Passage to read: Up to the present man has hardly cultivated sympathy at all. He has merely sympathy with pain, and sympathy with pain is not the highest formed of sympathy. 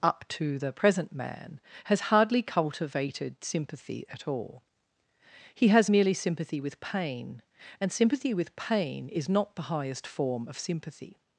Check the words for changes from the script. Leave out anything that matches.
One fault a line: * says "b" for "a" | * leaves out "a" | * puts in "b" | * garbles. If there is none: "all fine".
* says "form" for "formed"